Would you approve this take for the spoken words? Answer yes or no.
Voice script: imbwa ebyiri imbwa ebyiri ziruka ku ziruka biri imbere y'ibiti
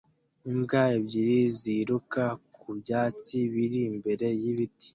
no